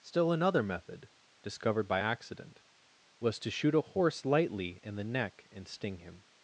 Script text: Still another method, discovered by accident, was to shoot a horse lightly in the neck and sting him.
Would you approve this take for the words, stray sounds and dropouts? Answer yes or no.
yes